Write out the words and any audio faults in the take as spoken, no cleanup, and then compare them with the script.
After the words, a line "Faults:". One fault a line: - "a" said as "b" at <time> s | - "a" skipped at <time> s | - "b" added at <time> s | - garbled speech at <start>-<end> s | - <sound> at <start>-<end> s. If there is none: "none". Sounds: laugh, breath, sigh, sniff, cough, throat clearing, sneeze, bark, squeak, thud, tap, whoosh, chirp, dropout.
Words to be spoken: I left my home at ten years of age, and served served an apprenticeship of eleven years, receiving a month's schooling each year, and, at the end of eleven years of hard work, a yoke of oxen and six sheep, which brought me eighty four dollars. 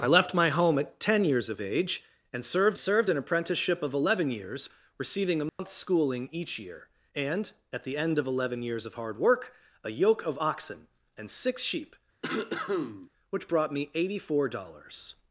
I left my home at ten years of age, and served served an apprenticeship of eleven years, receiving a month's schooling each year, and, at the end of eleven years of hard work, a yoke of oxen and six sheep, which brought me eighty four dollars.
Faults:
- dropout at 5.5-5.6 s
- cough at 12.2-13.1 s